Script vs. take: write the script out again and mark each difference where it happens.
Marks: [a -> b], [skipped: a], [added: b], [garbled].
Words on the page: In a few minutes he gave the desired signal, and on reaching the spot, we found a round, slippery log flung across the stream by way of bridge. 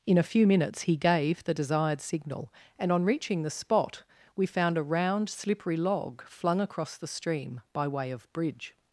In a few minutes he gave the desired signal, and on reaching the spot, we found a round, slippery log flung across the stream by way of bridge.